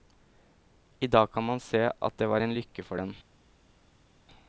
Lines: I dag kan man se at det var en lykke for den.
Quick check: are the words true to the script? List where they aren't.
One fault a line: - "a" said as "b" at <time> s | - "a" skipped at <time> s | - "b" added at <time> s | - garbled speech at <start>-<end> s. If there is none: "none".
none